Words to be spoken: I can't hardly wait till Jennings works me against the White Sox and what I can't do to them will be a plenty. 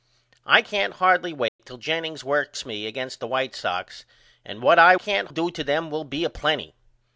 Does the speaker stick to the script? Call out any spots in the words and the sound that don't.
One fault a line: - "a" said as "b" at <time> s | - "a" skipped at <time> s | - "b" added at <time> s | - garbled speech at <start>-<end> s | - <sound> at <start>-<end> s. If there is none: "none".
- dropout at 1.5-1.6 s